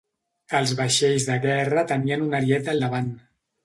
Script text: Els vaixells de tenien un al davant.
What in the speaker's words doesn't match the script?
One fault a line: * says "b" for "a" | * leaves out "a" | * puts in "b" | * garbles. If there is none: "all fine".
* puts in "guerra"
* puts in "ariet"